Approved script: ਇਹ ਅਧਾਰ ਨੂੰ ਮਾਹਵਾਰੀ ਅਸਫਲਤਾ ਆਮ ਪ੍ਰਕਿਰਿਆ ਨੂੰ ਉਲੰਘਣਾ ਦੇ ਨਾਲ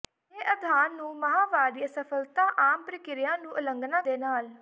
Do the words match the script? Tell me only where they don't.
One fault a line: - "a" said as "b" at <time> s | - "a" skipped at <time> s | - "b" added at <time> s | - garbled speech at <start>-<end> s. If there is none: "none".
none